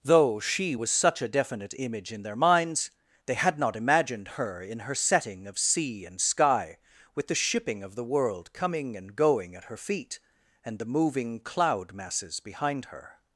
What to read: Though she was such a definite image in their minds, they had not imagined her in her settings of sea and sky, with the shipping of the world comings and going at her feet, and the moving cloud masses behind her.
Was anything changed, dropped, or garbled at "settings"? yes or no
yes